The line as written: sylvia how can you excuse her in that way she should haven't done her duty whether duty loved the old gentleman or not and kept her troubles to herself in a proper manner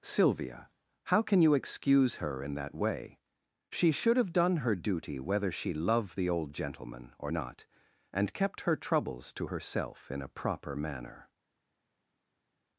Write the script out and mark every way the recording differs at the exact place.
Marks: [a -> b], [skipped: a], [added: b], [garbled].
sylvia how can you excuse her in that way she should [haven't -> have] done her duty whether [duty -> she] loved the old gentleman or not and kept her troubles to herself in a proper manner